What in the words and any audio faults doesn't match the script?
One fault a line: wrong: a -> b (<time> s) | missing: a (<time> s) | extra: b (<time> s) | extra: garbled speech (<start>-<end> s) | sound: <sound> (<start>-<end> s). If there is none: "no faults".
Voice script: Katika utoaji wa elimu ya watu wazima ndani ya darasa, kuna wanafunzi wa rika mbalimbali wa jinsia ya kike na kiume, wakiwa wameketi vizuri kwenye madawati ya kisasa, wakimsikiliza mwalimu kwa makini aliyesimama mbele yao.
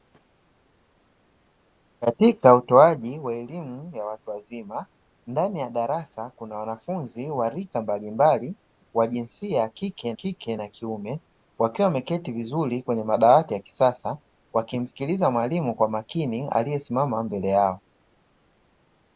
extra: kike (10.1 s)